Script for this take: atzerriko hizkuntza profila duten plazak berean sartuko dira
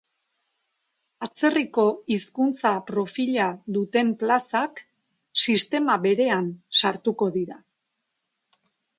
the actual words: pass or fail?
fail